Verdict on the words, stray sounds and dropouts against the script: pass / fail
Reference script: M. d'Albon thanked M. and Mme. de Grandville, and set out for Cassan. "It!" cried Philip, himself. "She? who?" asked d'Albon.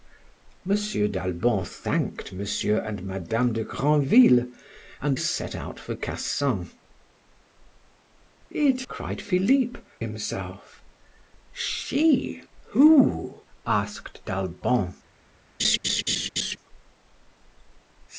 fail